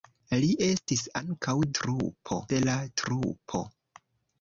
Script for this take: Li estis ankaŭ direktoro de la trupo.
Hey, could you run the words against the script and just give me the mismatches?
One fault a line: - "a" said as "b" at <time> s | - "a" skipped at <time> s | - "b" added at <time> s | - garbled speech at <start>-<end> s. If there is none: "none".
- "direktoro" said as "trupo" at 1.8 s